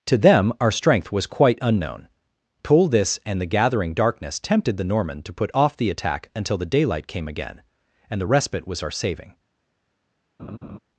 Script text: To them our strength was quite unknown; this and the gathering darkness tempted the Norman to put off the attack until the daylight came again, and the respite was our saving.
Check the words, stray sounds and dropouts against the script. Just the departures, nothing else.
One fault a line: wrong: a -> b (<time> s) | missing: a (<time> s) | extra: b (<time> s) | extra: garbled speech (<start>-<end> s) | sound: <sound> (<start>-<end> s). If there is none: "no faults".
extra: pull (2.6 s)
sound: laugh (10.4-10.8 s)